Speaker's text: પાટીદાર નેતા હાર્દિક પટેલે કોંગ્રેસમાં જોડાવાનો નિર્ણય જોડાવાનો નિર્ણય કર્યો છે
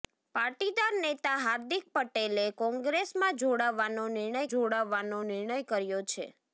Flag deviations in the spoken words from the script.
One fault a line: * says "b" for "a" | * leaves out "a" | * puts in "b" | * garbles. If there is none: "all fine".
all fine